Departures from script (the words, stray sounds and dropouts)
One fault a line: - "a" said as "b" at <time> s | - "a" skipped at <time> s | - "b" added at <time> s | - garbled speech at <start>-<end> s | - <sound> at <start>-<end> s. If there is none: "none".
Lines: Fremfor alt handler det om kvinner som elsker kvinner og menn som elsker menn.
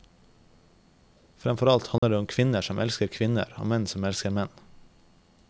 - dropout at 2.0-2.0 s